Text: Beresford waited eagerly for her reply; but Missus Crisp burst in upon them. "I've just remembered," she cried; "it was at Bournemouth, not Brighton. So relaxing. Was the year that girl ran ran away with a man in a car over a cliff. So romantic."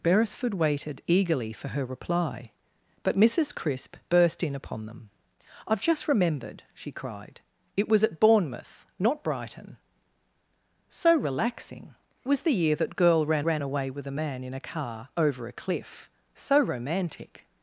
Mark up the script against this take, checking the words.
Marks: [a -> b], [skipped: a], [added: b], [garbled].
Beresford waited eagerly for her reply; but Missus Crisp burst in upon them. "I've just remembered," she cried; "it was at Bournemouth, not Brighton. So relaxing. Was the year that girl ran ran away with a man in a car over a cliff. So romantic."